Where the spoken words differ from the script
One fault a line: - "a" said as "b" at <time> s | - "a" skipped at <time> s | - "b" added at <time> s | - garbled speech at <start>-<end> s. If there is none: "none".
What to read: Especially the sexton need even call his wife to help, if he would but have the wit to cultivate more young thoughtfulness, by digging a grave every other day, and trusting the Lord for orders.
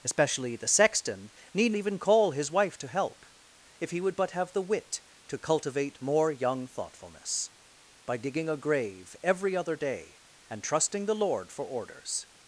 none